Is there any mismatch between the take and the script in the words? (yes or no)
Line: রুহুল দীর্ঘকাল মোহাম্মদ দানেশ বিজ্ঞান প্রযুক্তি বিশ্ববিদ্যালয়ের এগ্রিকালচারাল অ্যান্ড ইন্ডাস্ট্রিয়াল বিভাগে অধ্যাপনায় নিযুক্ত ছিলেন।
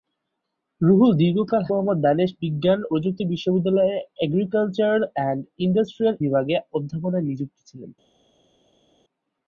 no